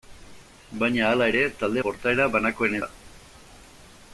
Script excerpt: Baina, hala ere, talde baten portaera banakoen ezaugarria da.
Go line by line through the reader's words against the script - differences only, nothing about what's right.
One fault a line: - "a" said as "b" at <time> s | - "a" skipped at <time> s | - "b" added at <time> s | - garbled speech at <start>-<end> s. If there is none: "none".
- "baten" skipped at 1.8 s
- "ezaugarria" skipped at 2.8 s